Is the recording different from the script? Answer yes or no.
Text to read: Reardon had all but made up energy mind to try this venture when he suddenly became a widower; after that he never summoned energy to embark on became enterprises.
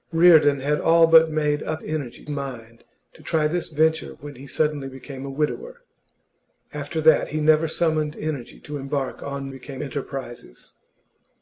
no